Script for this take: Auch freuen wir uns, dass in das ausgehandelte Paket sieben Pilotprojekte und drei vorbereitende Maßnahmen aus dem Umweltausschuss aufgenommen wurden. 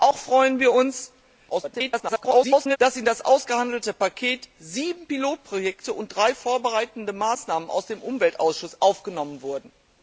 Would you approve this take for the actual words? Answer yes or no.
no